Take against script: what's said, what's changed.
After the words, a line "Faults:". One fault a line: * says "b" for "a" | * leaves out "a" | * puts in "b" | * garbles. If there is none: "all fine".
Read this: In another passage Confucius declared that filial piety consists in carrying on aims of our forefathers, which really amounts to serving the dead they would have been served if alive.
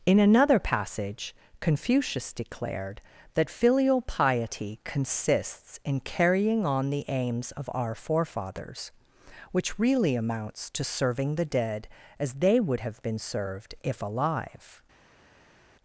In another passage Confucius declared that filial piety consists in carrying on the aims of our forefathers, which really amounts to serving the dead as they would have been served if alive.
Faults:
* puts in "the"
* puts in "as"